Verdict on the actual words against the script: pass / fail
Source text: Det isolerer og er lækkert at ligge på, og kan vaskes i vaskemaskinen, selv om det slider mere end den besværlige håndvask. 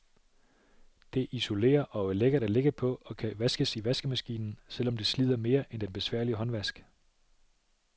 pass